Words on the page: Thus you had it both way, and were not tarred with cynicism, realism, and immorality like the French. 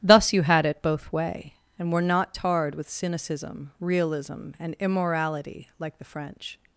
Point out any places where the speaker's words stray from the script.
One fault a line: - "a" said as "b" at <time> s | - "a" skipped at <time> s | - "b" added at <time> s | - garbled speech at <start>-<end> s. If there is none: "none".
none